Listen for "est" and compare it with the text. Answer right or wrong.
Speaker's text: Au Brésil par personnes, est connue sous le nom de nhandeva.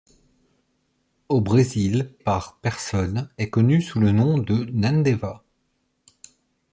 right